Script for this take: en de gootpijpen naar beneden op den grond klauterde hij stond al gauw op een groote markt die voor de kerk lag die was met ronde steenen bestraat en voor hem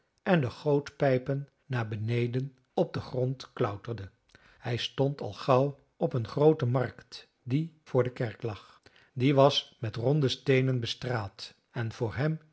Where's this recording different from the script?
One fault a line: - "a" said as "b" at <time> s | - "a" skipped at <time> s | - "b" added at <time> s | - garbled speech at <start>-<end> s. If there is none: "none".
none